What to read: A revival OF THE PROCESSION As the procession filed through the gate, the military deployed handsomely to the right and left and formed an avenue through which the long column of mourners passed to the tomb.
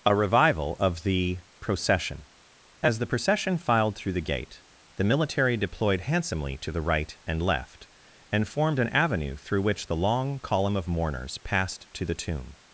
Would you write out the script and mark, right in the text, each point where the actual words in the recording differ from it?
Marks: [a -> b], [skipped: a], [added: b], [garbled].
A revival OF THE PROCESSION As the procession filed through the gate, the military deployed handsomely to the right and left and formed an avenue through which the long column of mourners passed to the tomb.